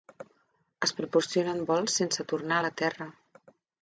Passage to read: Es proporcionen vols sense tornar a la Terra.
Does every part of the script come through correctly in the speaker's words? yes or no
yes